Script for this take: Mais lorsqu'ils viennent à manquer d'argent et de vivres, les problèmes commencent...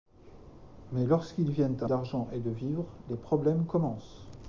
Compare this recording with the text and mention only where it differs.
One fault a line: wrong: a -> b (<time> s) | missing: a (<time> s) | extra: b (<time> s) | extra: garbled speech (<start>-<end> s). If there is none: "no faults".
missing: manquer (1.9 s)